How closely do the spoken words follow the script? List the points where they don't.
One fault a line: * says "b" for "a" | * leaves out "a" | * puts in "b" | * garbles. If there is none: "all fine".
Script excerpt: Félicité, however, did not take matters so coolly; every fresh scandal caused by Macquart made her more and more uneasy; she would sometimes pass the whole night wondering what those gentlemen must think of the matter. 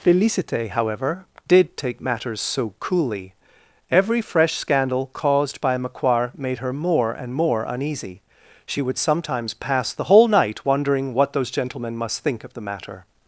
* leaves out "not"